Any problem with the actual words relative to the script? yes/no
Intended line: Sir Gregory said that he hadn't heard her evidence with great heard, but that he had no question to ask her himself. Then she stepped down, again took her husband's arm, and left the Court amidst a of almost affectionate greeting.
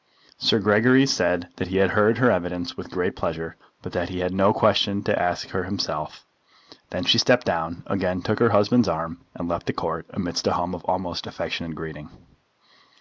yes